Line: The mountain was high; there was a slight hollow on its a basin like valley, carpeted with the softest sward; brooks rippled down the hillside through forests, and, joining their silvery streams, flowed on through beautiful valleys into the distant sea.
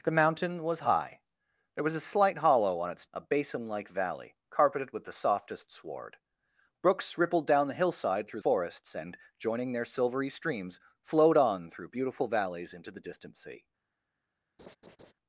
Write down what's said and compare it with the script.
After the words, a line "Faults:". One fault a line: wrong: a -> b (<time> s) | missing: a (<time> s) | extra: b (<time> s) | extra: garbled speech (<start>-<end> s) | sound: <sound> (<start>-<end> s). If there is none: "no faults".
The mountain was high; there was a slight hollow on its a basin like valley, carpeted with the softest sward; brooks rippled down the hillside through forests, and, joining their silvery streams, flowed on through beautiful valleys into the distant sea.
Faults:
sound: laugh (14.6-15.1 s)